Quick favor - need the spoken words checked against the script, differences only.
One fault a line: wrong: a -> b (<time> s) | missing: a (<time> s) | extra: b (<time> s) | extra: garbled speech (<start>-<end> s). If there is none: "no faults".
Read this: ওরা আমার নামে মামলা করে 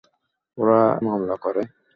missing: আমার নামে (0.8 s)